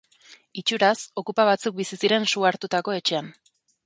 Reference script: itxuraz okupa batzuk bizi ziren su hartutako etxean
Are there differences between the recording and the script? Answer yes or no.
no